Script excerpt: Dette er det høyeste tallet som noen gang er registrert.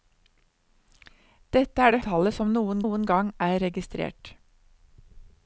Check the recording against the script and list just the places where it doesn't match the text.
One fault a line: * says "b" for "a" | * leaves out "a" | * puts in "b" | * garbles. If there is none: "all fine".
* leaves out "høyeste"
* puts in "noen"